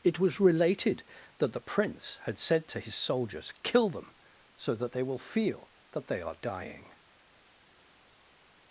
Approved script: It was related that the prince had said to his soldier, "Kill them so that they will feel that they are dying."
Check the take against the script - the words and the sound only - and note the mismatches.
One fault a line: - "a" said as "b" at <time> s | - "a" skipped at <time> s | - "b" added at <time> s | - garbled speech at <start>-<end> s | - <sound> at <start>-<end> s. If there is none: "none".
- "soldier" said as "soldiers" at 3.0 s